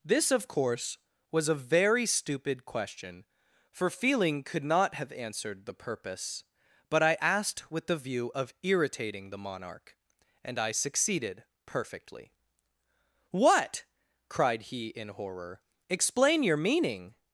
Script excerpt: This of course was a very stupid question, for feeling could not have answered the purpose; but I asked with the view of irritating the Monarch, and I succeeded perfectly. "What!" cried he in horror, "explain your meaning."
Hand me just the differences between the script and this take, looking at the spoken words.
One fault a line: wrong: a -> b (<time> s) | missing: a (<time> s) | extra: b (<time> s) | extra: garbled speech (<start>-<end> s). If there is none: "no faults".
no faults